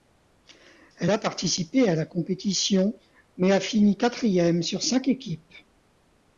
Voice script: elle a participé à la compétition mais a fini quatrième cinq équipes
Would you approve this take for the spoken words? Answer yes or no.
no